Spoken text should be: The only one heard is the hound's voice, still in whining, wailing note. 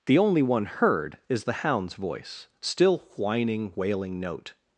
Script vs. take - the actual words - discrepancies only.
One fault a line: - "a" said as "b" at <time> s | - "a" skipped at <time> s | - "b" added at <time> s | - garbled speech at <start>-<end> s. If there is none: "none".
- "in" skipped at 3.0 s